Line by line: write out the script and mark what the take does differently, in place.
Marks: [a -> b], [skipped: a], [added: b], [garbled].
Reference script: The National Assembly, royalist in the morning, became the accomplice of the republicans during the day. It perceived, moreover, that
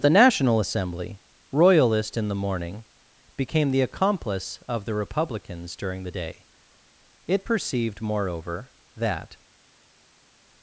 The National Assembly, royalist in the morning, became the accomplice of the republicans during the day. It perceived, moreover, that